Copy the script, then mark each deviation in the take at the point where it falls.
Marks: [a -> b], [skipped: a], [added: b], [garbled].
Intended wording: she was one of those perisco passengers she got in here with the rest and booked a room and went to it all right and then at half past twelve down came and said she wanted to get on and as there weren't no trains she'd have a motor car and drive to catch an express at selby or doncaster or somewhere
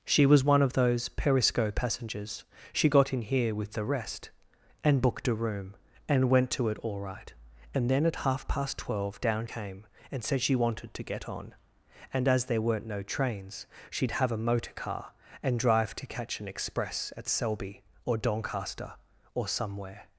she was one of those perisco passengers she got in here with the rest and booked a room and went to it all right and then at half past twelve down came and said she wanted to get on and as there weren't no trains she'd have a motor car and drive to catch an express at selby or doncaster or somewhere